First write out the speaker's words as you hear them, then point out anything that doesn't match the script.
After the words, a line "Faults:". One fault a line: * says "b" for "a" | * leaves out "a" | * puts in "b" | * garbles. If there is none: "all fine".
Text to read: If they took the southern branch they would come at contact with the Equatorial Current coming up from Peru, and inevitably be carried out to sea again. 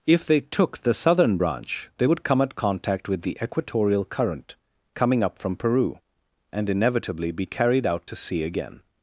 If they took the southern branch they would come at contact with the Equatorial Current coming up from Peru, and inevitably be carried out to sea again.
Faults:
all fine